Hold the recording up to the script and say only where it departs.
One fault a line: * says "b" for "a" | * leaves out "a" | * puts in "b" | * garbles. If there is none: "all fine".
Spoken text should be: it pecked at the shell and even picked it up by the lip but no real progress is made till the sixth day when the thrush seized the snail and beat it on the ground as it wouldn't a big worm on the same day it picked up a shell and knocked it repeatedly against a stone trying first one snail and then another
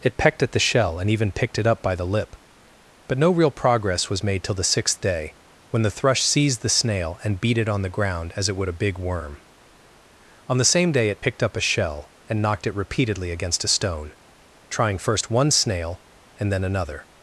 * says "was" for "is"
* says "would" for "wouldn't"